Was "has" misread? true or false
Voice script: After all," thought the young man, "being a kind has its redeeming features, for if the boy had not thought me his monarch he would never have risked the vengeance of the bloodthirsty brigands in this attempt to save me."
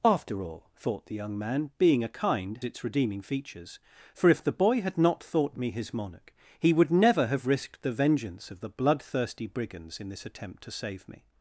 true